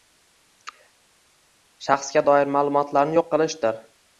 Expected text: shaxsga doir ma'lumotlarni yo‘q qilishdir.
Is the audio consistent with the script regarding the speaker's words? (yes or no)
yes